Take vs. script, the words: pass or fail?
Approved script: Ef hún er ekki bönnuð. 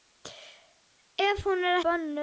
fail